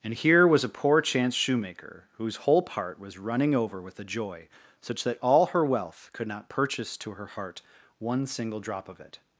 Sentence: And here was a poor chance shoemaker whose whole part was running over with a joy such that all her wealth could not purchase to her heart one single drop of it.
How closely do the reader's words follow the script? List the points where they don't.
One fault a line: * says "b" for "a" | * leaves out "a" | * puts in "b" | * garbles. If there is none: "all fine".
all fine